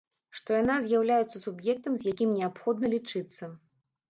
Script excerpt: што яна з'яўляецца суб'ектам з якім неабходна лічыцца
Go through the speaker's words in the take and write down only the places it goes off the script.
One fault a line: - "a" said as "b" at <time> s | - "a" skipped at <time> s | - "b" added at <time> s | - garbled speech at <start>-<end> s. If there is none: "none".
none